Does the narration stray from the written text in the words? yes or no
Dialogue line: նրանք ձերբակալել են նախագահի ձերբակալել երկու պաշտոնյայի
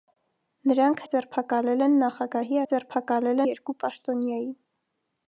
no